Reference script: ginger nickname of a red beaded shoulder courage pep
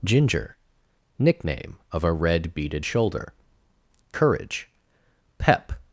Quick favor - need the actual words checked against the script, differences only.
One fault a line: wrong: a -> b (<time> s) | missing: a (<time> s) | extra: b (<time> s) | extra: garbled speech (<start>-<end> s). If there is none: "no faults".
no faults